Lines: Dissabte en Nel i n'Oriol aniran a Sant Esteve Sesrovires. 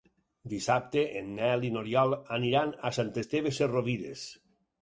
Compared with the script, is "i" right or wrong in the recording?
right